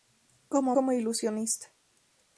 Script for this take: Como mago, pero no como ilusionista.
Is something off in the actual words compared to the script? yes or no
yes